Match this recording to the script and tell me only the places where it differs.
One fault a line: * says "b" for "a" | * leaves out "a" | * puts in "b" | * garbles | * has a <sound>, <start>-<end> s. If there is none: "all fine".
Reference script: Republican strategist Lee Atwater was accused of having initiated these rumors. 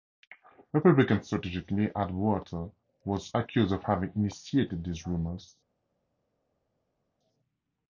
all fine